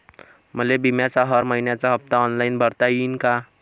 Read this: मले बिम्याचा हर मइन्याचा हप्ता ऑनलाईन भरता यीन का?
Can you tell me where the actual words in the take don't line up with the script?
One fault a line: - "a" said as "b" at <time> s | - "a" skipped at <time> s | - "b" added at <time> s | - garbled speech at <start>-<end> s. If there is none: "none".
none